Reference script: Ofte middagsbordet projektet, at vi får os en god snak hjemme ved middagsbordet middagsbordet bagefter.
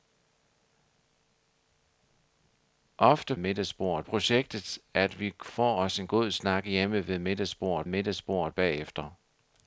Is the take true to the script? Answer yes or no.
yes